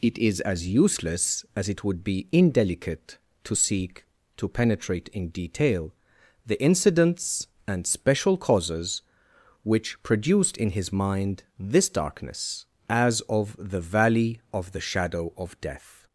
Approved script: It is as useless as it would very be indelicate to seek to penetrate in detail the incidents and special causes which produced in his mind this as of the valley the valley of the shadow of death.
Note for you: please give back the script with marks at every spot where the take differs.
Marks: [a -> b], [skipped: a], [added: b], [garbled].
It is as useless as it would [skipped: very] be indelicate to seek to penetrate in detail the incidents and special causes which produced in his mind this [added: darkness] as of the valley [skipped: the valley] of the shadow of death.